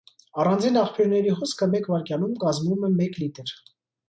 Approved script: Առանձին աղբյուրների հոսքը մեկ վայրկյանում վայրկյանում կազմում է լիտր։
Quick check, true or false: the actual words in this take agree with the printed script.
false